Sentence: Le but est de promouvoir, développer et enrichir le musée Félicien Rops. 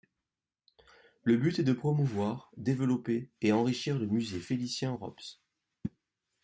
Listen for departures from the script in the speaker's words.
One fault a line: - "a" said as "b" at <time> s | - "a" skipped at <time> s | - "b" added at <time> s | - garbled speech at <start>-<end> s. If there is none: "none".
none